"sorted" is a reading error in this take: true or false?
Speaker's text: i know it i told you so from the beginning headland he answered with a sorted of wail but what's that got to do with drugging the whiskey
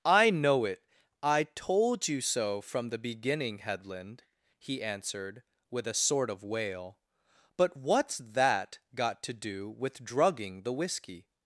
true